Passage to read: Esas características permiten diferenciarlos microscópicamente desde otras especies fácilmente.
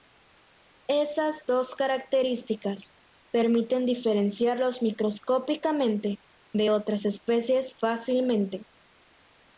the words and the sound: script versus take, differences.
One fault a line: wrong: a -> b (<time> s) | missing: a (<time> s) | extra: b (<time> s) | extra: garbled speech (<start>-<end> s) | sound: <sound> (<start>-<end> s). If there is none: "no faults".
extra: dos (1.5 s)
wrong: desde -> de (6.5 s)